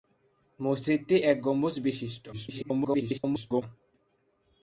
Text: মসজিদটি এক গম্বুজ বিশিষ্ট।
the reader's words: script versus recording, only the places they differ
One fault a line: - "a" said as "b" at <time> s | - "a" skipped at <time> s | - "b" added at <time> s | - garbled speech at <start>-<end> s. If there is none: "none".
- garbled speech at 2.3-3.6 s